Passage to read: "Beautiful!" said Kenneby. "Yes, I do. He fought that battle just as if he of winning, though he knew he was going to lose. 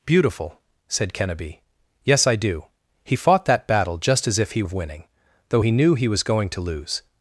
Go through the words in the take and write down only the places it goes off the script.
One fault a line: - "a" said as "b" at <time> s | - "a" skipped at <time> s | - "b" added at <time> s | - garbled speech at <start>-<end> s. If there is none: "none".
none